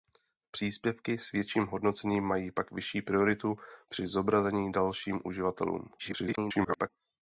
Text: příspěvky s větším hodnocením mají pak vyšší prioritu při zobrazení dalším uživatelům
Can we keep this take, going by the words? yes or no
no